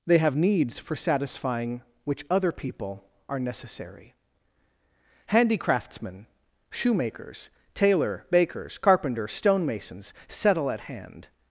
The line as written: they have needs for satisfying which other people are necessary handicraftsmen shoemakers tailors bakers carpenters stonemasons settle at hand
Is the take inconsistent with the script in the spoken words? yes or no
yes